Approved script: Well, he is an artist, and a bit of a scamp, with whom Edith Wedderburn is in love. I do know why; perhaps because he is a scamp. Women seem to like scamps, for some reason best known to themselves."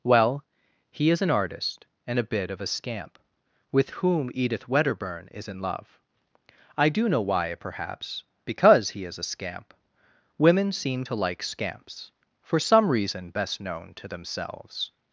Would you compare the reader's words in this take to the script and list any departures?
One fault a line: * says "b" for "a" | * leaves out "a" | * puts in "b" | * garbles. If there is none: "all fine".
all fine